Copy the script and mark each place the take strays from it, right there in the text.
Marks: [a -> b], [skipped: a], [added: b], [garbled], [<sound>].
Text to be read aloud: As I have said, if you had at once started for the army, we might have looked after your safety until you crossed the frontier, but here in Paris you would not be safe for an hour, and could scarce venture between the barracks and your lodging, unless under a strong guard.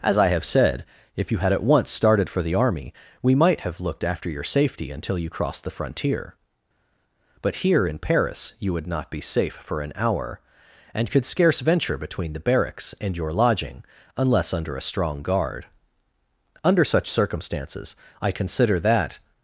As I have said, if you had at once started for the army, we might have looked after your safety until you crossed the frontier, but here in Paris you would not be safe for an hour, and could scarce venture between the barracks and your lodging, unless under a strong guard. [added: Under such circumstances I consider that]